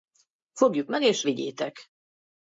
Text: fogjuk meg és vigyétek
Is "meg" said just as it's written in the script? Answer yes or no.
yes